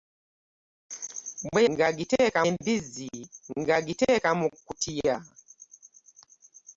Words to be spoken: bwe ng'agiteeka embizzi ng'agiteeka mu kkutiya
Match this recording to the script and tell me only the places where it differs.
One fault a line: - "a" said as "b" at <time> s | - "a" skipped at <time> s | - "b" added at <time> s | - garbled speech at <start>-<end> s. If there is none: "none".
none